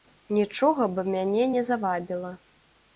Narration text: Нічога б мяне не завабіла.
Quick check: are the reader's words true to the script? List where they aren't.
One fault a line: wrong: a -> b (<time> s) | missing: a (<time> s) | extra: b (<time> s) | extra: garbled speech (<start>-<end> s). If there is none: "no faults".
no faults